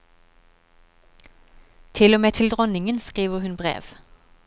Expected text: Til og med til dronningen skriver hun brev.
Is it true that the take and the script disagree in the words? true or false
false